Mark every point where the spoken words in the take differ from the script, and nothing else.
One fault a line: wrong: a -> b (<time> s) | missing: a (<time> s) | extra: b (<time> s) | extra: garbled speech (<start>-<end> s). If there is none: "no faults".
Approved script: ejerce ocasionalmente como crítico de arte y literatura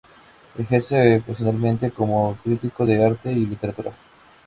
no faults